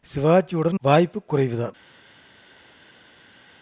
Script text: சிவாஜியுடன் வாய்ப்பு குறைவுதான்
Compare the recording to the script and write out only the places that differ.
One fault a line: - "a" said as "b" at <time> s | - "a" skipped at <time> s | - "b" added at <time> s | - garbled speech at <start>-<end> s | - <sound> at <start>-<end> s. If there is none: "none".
none